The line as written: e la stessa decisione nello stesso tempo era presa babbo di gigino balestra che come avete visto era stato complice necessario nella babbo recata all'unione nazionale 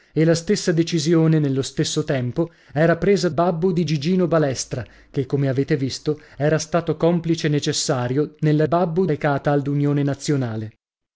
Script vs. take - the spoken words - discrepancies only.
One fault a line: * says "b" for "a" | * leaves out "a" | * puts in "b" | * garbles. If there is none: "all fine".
all fine